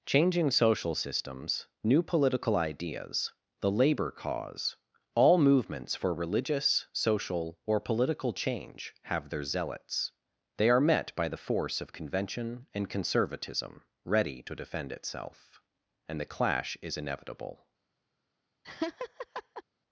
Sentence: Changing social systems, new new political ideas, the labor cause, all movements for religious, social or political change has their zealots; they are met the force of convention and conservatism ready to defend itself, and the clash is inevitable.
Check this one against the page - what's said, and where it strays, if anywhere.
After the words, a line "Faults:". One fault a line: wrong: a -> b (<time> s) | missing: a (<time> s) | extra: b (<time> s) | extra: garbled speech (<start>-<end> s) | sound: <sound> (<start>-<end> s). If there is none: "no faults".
Changing social systems, new political ideas, the labor cause, all movements for religious, social or political change have their zealots; they are met by the force of convention and conservatism ready to defend itself, and the clash is inevitable.
Faults:
missing: new (2.0 s)
wrong: has -> have (9.0 s)
extra: by (11.2 s)
sound: laugh (18.6-19.6 s)